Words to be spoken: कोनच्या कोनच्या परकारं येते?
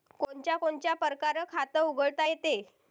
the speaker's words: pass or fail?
fail